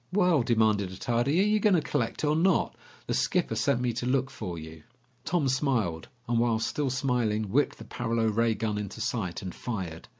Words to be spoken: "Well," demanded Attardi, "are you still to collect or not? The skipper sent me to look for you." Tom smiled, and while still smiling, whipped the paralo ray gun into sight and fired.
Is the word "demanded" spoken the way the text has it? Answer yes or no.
yes